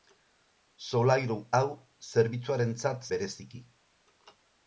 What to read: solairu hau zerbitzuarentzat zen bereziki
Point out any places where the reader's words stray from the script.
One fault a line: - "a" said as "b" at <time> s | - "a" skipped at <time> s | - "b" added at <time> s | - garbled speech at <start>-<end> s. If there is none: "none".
- "zen" skipped at 3.1 s